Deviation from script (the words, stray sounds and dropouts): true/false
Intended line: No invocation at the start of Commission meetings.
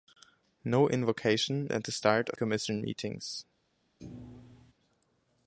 true